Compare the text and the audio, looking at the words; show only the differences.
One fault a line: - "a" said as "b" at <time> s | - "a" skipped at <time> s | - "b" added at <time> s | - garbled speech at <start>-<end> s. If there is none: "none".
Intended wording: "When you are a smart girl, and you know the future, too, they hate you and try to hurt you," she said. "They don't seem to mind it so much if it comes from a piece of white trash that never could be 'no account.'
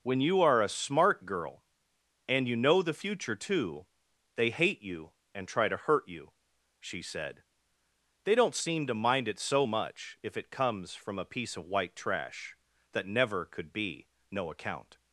none